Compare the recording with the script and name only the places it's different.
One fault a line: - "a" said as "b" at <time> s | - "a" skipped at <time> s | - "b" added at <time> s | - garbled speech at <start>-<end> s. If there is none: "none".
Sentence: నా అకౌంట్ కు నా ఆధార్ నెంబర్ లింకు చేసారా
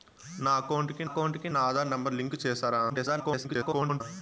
- "అకౌంట్ కు" added at 1.1 s
- garbled speech at 2.9-4.0 s